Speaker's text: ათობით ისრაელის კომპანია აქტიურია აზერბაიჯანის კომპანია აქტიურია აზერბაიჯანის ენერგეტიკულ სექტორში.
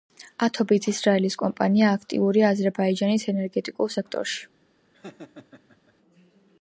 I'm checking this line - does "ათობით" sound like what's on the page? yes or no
yes